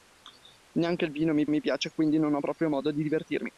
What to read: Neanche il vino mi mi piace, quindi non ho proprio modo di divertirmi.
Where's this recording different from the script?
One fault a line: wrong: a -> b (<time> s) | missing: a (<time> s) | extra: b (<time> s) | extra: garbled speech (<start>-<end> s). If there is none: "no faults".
no faults